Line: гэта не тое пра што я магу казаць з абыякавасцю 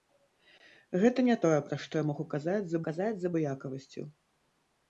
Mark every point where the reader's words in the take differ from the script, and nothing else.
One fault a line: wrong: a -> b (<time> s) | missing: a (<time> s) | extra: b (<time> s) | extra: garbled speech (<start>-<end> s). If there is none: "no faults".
extra: казаць з (2.9 s)